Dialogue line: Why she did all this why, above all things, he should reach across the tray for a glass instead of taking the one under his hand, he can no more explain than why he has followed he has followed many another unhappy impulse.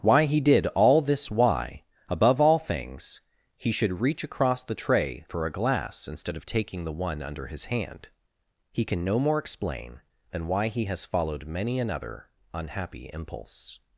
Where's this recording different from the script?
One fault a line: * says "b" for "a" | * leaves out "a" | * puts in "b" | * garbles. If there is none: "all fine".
* says "he" for "she"
* leaves out "he has followed"